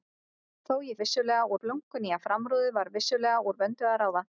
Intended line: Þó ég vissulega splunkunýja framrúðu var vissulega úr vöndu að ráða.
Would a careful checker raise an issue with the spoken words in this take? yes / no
no